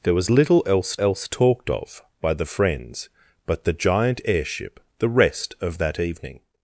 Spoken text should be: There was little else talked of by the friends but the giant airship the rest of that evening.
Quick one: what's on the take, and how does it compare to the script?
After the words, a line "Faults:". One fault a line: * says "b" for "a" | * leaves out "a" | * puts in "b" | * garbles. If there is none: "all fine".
There was little else else talked of by the friends but the giant airship the rest of that evening.
Faults:
* puts in "else"